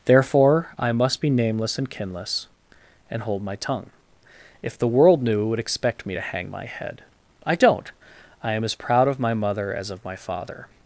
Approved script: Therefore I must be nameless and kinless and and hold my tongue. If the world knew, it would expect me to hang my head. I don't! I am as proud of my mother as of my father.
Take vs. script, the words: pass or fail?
fail